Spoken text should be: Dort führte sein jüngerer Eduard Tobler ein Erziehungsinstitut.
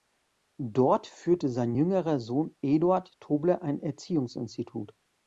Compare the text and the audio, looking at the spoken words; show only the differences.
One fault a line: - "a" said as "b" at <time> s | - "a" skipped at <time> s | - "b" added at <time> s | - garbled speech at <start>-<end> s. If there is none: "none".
- "Sohn" added at 2.2 s